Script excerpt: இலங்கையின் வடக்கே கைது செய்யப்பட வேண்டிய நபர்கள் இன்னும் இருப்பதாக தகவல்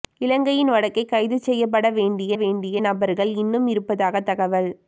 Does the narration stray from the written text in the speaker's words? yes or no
yes